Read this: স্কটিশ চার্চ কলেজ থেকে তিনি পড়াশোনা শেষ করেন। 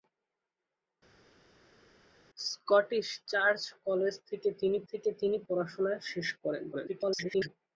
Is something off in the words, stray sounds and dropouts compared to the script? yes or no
yes